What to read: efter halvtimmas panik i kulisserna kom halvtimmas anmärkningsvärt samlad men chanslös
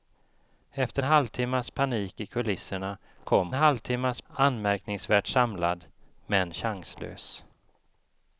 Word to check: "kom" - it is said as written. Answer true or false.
true